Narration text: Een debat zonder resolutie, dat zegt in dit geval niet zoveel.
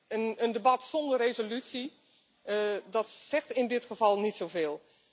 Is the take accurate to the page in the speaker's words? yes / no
yes